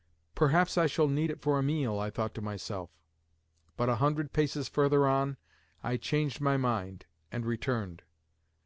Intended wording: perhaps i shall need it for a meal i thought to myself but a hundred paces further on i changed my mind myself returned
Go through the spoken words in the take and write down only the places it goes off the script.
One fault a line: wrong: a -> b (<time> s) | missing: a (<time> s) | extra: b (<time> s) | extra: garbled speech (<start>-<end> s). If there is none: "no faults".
wrong: myself -> and (7.3 s)